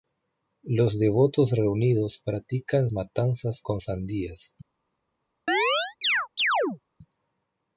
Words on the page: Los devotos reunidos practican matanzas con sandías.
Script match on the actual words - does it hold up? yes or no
yes